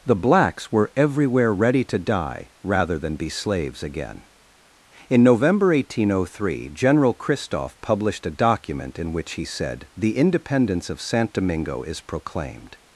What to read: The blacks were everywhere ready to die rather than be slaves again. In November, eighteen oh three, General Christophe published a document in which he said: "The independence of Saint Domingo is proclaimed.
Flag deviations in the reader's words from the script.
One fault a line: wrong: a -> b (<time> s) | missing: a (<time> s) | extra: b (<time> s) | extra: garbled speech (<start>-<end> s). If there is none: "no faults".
no faults